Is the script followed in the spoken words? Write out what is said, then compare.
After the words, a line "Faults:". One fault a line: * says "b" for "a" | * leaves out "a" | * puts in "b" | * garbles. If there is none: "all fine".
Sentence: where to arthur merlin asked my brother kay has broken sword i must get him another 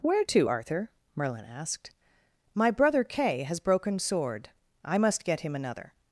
where to arthur merlin asked my brother kay has broken sword i must get him another
Faults:
all fine